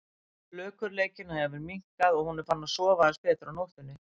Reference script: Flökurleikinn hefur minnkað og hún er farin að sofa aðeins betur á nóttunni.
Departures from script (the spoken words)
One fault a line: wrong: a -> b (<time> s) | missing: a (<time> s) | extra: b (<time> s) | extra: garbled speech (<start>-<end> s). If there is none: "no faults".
no faults